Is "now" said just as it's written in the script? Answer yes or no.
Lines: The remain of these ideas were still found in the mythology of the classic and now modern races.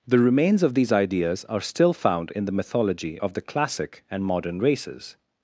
no